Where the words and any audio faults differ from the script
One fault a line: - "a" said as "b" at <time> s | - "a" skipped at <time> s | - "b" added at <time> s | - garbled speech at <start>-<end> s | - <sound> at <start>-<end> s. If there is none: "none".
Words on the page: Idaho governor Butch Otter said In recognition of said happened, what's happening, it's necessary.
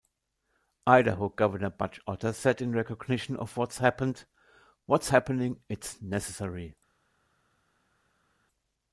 - "said" said as "what's" at 3.6 s